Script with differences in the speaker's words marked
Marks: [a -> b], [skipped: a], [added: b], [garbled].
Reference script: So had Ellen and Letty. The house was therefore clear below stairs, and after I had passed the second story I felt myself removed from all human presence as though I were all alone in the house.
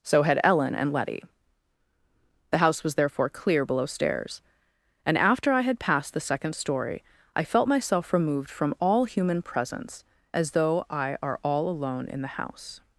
So had Ellen and Letty. The house was therefore clear below stairs, and after I had passed the second story I felt myself removed from all human presence as though I [were -> are] all alone in the house.